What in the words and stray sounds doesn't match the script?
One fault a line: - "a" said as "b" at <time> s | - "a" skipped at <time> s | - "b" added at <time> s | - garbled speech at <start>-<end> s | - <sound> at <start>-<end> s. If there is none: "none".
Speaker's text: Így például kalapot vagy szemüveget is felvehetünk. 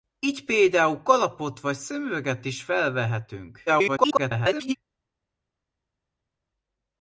- garbled speech at 3.7-4.8 s